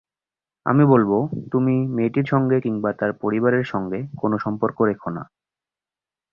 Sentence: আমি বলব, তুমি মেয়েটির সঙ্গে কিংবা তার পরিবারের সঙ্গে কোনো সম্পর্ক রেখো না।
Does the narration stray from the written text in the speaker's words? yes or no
no